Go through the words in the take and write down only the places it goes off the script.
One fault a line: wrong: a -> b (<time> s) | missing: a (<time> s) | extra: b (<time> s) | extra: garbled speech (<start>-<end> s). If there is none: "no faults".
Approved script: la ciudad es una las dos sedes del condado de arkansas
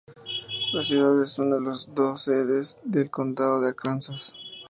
no faults